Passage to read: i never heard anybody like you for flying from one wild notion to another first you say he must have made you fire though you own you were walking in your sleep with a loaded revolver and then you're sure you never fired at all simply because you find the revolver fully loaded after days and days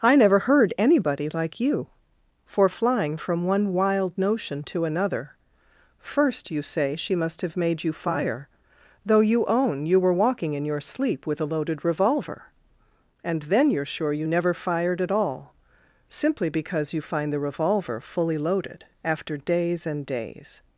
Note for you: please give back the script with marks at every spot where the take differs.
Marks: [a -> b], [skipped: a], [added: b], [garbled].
i never heard anybody like you for flying from one wild notion to another first you say [he -> she] must have made you fire though you own you were walking in your sleep with a loaded revolver and then you're sure you never fired at all simply because you find the revolver fully loaded after days and days